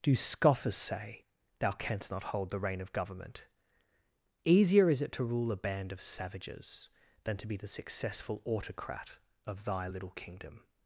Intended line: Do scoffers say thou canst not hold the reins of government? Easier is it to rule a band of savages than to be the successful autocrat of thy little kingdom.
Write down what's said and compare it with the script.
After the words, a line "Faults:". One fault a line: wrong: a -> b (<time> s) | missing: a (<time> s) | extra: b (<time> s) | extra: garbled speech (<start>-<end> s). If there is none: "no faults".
Do scoffers say thou canst not hold the rein of government? Easier is it to rule a band of savages than to be the successful autocrat of thy little kingdom.
Faults:
wrong: reins -> rein (2.6 s)